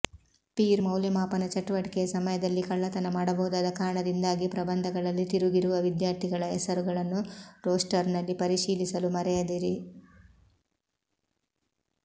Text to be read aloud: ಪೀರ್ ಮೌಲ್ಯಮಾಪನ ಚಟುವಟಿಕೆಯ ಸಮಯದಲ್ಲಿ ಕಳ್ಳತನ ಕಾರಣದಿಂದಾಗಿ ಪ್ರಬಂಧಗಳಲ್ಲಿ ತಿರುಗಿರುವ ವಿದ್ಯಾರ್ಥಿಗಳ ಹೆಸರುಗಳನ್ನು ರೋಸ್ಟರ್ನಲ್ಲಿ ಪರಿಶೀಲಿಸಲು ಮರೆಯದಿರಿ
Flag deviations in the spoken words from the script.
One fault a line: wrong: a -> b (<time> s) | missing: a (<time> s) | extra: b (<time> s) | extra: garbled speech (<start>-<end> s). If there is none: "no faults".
extra: ಮಾಡಬಹುದಾದ (3.1 s)